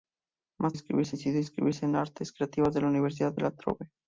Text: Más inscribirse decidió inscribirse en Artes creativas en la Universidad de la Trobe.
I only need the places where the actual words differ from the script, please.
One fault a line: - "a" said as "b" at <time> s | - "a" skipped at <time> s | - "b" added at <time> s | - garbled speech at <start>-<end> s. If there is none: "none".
none